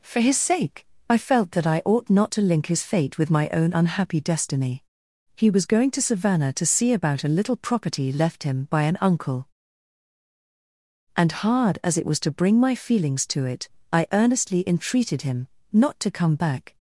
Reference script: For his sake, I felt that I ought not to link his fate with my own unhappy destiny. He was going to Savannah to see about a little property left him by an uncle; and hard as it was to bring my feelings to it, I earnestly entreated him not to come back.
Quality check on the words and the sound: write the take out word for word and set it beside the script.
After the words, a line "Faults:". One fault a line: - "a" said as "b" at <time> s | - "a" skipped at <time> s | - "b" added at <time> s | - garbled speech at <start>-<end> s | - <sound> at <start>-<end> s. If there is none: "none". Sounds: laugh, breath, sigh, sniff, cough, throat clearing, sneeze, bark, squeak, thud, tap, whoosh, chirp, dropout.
For his sake, I felt that I ought not to link his fate with my own unhappy destiny. He was going to Savannah to see about a little property left him by an uncle; and hard as it was to bring my feelings to it, I earnestly entreated him not to come back.
Faults:
none